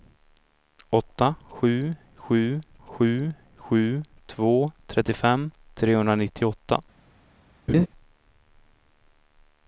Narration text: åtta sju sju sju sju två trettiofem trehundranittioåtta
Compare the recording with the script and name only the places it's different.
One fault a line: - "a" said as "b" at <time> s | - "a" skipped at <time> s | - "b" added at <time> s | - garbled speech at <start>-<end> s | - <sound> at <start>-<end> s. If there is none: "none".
- laugh at 7.7-7.9 s